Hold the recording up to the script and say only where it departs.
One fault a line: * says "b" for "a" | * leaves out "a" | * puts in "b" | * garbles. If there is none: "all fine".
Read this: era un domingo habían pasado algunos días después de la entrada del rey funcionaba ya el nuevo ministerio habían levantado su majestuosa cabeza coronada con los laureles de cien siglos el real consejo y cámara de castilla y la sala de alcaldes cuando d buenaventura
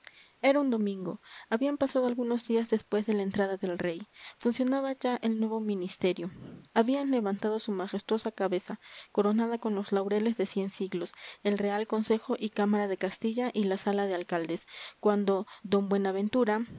all fine